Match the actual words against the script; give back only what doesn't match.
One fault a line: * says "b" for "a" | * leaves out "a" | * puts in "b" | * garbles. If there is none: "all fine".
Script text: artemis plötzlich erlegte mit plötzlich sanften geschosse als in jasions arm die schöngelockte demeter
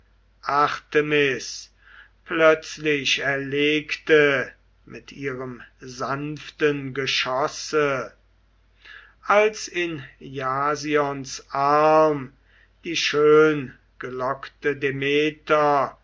* says "ihrem" for "plötzlich"